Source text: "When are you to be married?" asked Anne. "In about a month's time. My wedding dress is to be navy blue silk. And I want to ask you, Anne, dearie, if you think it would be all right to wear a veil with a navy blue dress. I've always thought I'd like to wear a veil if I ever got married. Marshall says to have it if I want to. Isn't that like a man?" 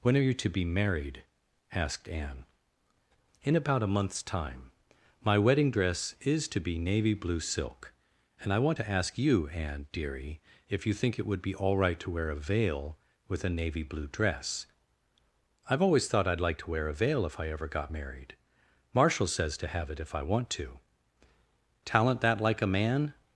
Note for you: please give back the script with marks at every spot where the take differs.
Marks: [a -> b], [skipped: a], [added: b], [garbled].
"When are you to be married?" asked Anne. "In about a month's time. My wedding dress is to be navy blue silk. And I want to ask you, Anne, dearie, if you think it would be all right to wear a veil with a navy blue dress. I've always thought I'd like to wear a veil if I ever got married. Marshall says to have it if I want to. [Isn't -> Talent] that like a man?"